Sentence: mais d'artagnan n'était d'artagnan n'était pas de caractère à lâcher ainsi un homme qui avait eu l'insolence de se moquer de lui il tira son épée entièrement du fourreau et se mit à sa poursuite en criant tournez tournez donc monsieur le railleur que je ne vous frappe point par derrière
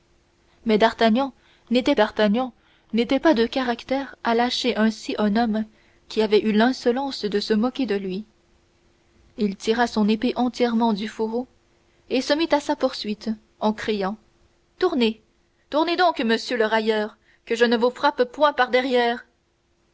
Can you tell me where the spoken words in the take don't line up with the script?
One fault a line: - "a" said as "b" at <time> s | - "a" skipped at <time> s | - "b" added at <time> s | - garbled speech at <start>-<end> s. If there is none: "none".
none